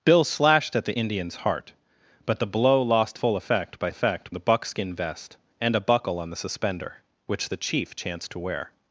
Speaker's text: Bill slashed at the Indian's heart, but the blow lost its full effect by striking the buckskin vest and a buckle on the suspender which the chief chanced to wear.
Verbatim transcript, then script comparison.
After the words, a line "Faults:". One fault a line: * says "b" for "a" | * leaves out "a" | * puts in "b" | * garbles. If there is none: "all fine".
Bill slashed at the Indian's heart, but the blow lost full effect by effect the buckskin vest and a buckle on the suspender which the chief chanced to wear.
Faults:
* leaves out "its"
* says "effect" for "striking"